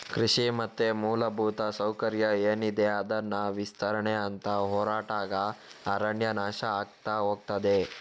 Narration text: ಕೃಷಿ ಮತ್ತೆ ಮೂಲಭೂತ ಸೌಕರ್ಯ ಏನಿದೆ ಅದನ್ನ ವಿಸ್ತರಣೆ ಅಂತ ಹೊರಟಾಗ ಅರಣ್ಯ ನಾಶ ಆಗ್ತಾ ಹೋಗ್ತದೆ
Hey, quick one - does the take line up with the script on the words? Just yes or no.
yes